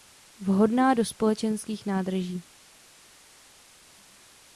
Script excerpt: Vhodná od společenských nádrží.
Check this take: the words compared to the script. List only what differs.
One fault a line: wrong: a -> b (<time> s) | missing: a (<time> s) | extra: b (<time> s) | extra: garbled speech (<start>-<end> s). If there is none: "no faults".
wrong: od -> do (0.9 s)